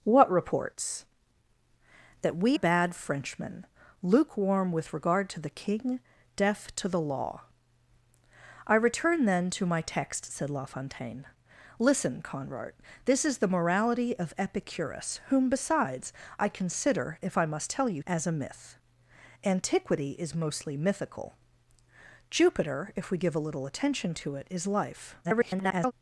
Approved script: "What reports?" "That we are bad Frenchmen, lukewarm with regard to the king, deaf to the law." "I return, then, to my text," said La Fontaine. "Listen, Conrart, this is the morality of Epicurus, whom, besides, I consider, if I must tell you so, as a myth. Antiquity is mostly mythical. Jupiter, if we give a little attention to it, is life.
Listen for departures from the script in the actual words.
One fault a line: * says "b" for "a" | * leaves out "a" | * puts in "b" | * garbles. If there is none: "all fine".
* leaves out "are"
* leaves out "so"
* garbles